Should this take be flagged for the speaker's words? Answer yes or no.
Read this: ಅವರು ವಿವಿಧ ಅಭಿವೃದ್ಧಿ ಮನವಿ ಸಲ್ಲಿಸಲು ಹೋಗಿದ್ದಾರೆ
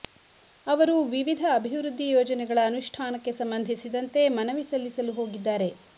yes